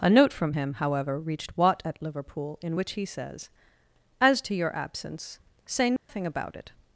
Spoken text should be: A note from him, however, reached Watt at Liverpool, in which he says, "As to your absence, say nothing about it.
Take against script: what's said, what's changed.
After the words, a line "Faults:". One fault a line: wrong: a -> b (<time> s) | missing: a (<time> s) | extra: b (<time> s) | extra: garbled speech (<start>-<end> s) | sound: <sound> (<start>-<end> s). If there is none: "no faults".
A note from him, however, reached Watt at Liverpool, in which he says, "As to your absence, say nothing about it.
Faults:
sound: dropout (6.0-6.1 s)